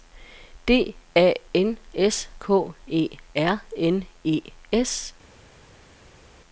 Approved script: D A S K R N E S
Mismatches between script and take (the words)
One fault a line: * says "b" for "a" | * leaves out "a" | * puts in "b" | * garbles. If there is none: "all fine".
* puts in "N"
* puts in "E"